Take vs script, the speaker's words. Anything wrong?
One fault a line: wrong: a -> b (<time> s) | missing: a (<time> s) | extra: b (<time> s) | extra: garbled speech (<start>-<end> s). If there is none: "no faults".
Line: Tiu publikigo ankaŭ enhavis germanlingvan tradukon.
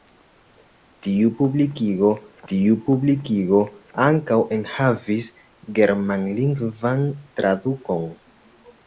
extra: tiu publikigo (2.5 s)